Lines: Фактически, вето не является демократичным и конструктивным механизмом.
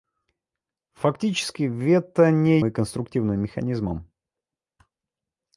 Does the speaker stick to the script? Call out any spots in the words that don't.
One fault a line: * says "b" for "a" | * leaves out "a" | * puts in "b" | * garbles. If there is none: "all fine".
* leaves out "является демократичным"